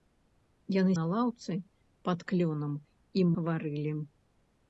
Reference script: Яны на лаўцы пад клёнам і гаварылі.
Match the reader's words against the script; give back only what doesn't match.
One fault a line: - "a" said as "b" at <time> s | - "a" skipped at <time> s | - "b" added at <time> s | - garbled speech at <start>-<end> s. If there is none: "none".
none